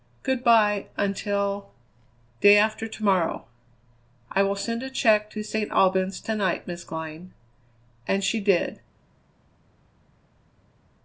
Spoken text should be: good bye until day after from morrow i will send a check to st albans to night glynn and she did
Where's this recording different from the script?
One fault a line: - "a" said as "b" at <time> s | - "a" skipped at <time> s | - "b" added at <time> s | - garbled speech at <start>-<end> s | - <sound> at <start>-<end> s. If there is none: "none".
- "from" said as "to" at 2.9 s
- "miss" added at 6.7 s